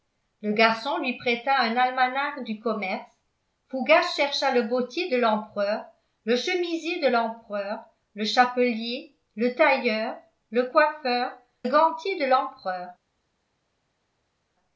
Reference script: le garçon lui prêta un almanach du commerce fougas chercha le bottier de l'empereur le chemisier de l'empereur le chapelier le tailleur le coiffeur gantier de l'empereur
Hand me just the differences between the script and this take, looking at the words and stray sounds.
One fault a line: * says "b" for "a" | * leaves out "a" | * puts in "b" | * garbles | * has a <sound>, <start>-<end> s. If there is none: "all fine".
all fine